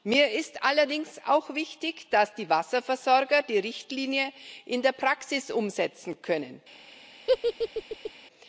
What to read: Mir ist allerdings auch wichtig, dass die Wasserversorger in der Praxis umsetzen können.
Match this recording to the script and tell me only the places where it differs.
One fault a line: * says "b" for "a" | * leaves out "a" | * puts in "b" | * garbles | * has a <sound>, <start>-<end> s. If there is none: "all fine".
* puts in "die Richtlinie"
* has a laugh, 7.3-8.1 s